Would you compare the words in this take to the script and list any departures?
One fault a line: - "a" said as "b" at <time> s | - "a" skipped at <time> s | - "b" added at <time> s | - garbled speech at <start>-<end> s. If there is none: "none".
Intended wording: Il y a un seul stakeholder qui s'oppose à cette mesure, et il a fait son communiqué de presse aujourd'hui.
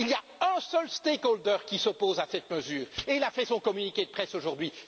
none